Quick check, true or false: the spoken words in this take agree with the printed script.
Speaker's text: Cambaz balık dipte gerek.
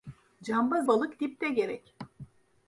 true